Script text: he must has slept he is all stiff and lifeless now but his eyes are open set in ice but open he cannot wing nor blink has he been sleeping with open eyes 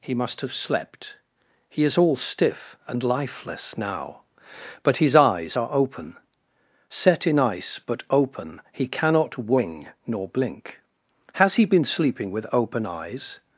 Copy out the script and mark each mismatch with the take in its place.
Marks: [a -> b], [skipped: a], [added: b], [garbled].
he must [has -> have] slept he is all stiff and lifeless now but his eyes are open set in ice but open he cannot wing nor blink has he been sleeping with open eyes